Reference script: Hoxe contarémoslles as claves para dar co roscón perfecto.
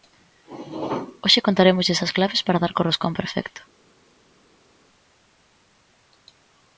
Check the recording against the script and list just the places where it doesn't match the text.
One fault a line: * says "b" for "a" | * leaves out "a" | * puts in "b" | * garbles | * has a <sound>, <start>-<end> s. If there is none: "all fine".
all fine